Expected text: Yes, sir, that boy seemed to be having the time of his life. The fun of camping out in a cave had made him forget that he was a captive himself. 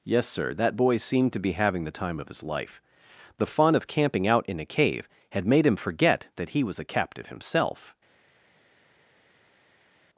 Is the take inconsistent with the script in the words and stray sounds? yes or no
no